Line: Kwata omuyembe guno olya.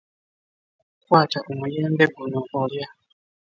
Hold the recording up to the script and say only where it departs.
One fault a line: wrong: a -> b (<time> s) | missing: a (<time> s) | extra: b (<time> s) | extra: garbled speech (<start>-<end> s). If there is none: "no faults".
no faults